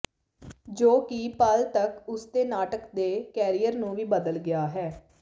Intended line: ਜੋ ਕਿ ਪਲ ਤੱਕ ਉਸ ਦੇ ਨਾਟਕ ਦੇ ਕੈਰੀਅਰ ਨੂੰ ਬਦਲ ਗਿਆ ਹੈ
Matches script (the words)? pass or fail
fail